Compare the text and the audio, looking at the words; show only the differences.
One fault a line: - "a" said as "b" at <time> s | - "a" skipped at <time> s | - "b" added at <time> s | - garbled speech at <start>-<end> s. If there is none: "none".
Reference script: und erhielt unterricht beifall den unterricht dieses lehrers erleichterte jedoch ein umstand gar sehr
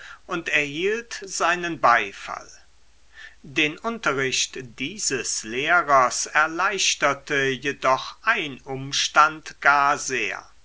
- "unterricht" said as "seinen" at 1.2 s